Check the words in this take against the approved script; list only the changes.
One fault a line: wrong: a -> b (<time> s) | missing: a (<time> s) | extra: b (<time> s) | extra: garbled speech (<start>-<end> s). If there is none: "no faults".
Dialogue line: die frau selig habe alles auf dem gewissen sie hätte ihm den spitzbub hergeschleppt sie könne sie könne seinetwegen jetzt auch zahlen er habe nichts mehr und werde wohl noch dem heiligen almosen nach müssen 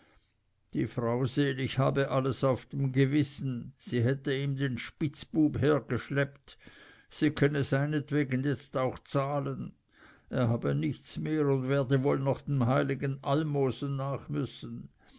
missing: sie könne (7.6 s)